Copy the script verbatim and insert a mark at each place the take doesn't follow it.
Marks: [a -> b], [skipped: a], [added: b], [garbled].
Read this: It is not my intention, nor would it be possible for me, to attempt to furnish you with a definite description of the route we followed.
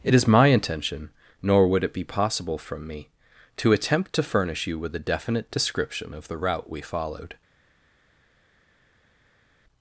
It is [skipped: not] my intention, nor would it be possible [for -> from] me, to attempt to furnish you with a definite description of the route we followed.